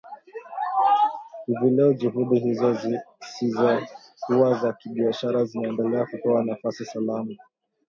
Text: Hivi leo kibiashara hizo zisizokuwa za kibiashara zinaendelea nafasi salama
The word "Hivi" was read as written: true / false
true